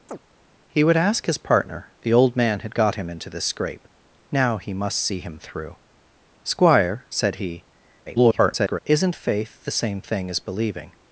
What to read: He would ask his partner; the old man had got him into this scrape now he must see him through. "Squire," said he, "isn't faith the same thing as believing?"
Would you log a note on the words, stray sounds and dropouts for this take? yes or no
yes